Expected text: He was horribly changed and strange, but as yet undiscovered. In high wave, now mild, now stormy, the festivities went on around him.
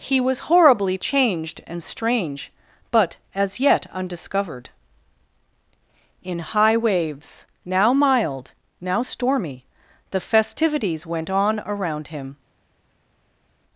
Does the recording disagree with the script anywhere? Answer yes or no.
yes